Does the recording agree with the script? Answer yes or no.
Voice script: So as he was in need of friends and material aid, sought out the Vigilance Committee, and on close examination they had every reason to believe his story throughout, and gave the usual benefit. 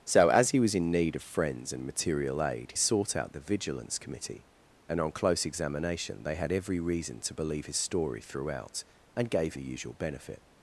yes